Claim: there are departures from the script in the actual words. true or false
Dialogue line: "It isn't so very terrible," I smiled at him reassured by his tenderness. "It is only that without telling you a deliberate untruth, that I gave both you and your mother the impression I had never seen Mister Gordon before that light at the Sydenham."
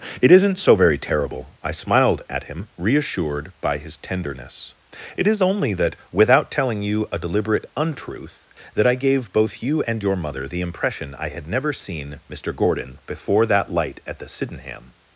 false